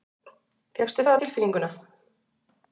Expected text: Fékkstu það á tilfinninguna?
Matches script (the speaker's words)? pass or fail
pass